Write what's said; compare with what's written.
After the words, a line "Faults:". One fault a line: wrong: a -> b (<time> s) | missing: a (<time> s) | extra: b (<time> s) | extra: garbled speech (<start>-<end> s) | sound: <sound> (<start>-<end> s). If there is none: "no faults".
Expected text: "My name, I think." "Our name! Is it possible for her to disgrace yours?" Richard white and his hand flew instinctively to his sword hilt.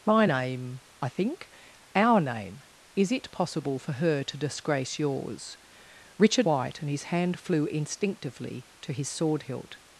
"My name, I think." "Our name! Is it possible for her to disgrace yours?" Richard white and his hand flew instinctively to his sword hilt.
Faults:
no faults